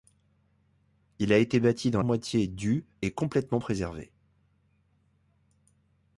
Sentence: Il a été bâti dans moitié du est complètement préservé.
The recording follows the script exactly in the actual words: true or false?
true